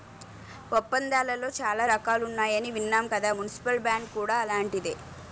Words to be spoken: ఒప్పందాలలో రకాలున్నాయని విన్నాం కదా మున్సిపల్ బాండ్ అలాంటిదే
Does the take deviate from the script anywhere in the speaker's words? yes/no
yes